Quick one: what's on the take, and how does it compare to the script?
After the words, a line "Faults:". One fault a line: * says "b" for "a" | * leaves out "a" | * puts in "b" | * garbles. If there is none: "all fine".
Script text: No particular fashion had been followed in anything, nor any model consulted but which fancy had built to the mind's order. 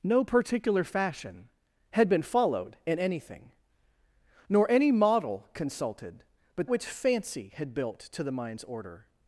No particular fashion had been followed in anything, nor any model consulted but which fancy had built to the mind's order.
Faults:
all fine